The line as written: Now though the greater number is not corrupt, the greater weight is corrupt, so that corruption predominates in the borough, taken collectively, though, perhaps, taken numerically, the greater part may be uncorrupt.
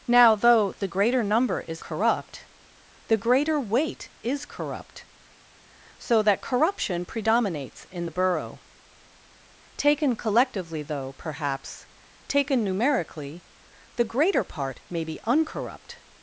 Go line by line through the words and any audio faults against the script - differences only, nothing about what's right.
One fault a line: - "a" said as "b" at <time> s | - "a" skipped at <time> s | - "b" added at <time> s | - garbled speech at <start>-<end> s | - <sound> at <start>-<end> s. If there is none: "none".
- "not" skipped at 1.8 s